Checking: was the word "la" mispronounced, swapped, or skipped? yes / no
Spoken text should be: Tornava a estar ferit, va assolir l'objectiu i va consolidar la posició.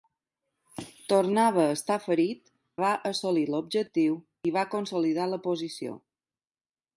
no